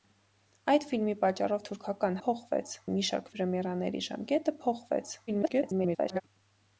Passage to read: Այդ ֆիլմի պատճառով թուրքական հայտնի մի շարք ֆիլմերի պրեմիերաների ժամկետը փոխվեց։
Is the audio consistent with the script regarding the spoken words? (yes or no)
no